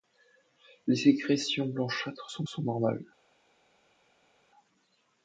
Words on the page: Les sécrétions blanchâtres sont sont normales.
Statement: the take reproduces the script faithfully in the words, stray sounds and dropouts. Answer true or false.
true